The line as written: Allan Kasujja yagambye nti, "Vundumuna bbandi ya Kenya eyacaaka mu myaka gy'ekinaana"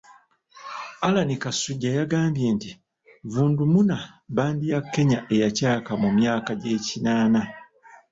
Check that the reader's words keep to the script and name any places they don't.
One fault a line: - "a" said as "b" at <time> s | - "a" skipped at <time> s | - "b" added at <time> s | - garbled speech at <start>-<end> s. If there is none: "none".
none